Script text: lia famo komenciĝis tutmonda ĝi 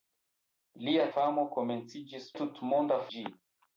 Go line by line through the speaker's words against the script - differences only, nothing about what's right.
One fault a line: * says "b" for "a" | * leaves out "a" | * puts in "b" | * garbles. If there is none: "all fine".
all fine